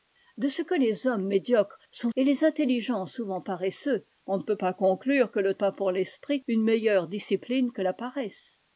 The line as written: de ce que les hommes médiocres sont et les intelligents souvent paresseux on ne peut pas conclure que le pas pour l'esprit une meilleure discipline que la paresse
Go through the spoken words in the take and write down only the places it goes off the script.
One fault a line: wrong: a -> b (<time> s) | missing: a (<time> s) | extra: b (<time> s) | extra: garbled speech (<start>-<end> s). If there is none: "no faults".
no faults